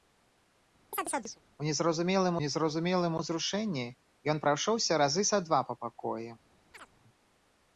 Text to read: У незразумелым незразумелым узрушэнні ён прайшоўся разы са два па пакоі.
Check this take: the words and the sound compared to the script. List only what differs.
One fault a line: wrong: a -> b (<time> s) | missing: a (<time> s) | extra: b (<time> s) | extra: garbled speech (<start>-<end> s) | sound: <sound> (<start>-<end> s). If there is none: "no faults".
sound: chirp (0.9-1.4 s)
sound: chirp (6.7-6.9 s)